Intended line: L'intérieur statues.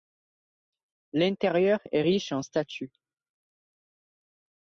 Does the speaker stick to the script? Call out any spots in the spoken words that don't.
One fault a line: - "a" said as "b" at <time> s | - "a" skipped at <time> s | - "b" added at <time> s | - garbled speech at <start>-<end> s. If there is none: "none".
- "est riche en" added at 1.9 s